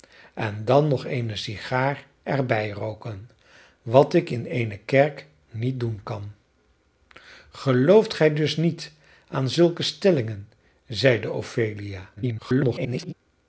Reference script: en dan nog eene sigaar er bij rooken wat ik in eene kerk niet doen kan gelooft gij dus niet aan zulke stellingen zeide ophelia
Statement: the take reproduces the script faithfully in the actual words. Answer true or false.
false